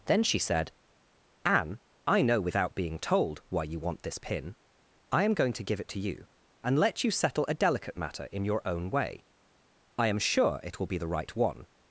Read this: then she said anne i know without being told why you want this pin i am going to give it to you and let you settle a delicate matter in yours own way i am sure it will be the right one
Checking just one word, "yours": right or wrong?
wrong